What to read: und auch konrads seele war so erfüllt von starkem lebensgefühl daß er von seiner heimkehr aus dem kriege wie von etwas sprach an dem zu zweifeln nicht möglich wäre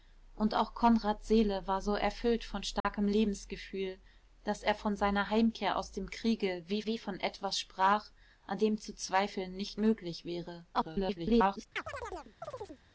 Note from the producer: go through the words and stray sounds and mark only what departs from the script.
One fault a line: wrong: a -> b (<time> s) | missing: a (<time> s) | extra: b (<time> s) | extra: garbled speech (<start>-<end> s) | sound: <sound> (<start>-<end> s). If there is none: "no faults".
sound: dropout (2.8-2.8 s)
extra: wie (6.8 s)
extra: garbled speech (10.7-11.7 s)
sound: chirp (11.8-12.8 s)